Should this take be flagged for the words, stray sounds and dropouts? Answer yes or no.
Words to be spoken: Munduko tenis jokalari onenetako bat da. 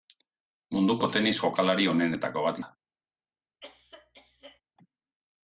yes